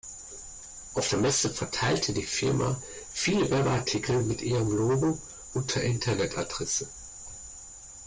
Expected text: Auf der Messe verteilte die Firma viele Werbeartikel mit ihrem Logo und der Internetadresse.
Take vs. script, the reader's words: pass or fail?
pass